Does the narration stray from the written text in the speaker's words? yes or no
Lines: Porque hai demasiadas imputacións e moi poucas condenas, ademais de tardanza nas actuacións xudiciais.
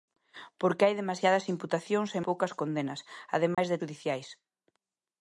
yes